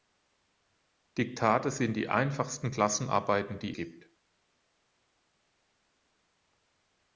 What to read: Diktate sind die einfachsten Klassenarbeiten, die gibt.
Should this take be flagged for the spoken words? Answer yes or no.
no